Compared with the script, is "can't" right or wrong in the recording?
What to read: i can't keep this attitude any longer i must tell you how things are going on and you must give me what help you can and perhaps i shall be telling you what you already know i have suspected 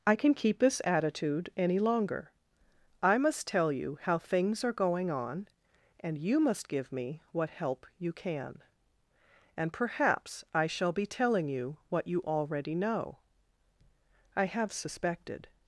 wrong